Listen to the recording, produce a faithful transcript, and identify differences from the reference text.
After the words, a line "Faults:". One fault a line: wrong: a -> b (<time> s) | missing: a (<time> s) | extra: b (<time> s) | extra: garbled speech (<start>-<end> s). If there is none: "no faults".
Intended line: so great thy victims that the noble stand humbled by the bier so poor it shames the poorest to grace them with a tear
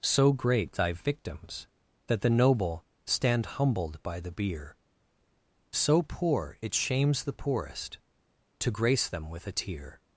so great thy victims that the noble stand humbled by the bier so poor it shames the poorest to grace them with a tear
Faults:
no faults